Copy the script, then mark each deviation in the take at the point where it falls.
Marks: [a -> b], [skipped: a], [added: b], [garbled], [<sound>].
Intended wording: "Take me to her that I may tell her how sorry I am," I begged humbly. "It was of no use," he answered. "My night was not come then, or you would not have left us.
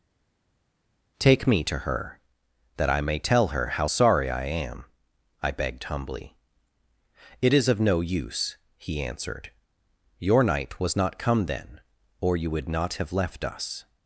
"Take me to her that I may tell her how sorry I am," I begged humbly. "It [was -> is] of no use," he answered. ["My -> Your] night was not come then, or you would not have left us.